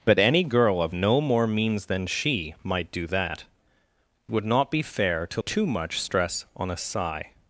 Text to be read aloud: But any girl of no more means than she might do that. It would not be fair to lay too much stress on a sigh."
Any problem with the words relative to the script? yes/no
yes